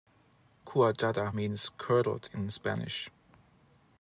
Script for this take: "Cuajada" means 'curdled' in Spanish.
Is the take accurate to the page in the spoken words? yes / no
yes